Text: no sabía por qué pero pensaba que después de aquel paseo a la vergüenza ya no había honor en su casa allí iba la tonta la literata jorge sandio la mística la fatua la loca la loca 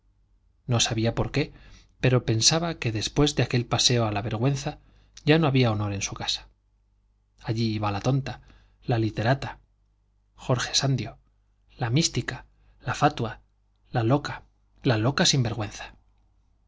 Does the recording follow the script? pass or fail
pass